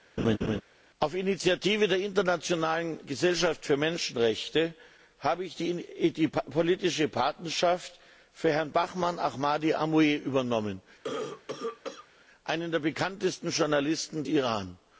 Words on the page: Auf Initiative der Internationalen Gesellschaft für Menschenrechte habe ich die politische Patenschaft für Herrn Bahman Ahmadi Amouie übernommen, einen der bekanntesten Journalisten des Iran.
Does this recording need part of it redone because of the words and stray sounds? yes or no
yes